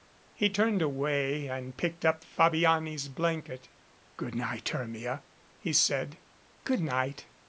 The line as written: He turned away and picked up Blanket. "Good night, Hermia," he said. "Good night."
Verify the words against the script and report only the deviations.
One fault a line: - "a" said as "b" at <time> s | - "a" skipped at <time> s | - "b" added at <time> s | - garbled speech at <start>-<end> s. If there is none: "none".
- "Fabiani's" added at 2.2 s